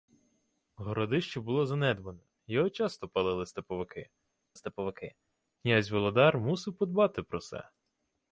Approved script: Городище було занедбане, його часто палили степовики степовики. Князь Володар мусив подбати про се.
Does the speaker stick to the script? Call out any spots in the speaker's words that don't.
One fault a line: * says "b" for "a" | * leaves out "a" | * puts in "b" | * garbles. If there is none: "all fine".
all fine